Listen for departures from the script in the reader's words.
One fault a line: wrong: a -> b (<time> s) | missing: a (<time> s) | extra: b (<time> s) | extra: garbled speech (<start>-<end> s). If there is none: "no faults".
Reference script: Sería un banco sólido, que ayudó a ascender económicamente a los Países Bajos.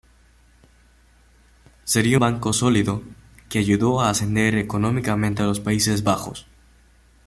missing: un (2.2 s)